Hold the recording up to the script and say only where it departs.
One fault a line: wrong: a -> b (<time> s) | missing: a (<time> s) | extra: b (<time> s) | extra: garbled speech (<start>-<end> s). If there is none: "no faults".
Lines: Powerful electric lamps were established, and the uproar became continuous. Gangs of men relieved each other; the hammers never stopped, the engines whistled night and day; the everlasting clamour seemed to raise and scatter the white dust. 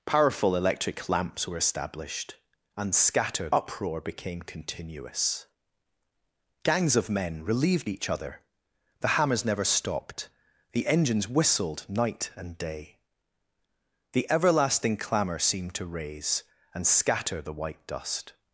wrong: the -> scatter (2.9 s)